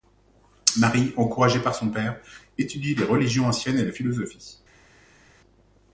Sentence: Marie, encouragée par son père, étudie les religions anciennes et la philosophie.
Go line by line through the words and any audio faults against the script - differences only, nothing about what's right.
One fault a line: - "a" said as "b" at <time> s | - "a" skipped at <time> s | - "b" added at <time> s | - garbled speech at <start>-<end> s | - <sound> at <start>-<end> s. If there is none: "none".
none